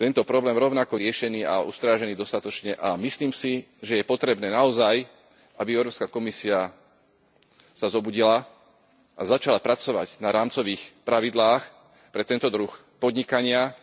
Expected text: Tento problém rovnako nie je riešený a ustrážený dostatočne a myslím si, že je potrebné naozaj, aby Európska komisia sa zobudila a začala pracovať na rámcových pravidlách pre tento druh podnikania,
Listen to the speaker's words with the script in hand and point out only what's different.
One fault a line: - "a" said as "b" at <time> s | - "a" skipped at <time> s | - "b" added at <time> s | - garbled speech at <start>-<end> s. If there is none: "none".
- "nie" skipped at 1.0 s